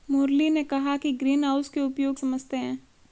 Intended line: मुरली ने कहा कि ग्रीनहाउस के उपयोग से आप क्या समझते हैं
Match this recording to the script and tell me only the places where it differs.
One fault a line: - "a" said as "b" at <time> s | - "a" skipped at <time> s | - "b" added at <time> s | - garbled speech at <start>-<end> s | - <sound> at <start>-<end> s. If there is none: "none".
- "से आप क्या" skipped at 2.2 s